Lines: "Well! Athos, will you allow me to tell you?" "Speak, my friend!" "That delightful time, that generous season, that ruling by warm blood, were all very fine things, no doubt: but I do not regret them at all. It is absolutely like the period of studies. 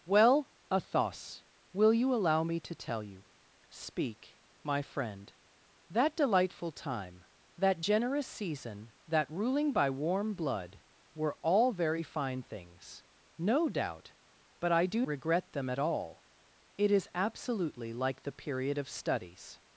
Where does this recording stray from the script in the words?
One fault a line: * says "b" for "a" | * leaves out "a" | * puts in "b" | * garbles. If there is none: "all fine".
* leaves out "not"